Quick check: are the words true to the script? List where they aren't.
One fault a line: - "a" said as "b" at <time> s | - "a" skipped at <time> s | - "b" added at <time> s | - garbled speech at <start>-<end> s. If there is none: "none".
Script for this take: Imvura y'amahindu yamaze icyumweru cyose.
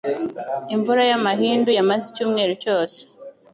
none